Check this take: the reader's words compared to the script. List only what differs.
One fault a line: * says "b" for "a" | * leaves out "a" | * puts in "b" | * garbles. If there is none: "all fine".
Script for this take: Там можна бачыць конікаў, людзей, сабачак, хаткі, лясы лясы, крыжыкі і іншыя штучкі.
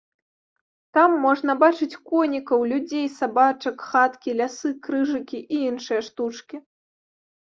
* leaves out "лясы"